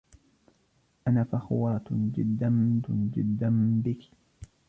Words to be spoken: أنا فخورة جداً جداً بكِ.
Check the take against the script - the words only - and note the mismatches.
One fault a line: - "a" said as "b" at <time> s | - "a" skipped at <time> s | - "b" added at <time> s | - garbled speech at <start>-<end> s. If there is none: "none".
none